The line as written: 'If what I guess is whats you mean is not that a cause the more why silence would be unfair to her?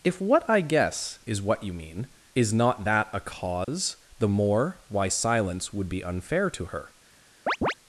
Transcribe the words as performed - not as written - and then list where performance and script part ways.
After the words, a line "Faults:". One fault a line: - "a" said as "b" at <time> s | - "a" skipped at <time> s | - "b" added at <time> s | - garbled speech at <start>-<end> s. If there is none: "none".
'If what I guess is what you mean is not that a cause the more why silence would be unfair to her?
Faults:
- "whats" said as "what" at 1.4 s